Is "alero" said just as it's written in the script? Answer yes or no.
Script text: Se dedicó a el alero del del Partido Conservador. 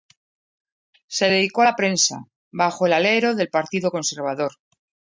yes